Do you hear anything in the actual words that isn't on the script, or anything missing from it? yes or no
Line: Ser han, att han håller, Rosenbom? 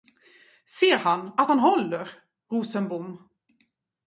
no